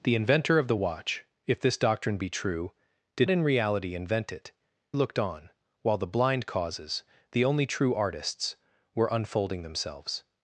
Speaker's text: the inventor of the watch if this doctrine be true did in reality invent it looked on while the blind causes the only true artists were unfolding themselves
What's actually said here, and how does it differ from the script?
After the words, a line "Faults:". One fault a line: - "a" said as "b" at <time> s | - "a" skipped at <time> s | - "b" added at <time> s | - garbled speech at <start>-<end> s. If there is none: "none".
the inventor of the watch if this doctrine be true did in reality invent it looked on while the blind causes the only true artists were unfolding themselves
Faults:
none